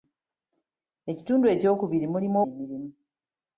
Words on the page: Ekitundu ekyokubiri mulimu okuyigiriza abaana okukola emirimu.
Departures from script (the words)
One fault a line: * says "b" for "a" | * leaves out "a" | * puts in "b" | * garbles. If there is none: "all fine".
* leaves out "okuyigiriza abaana okukola"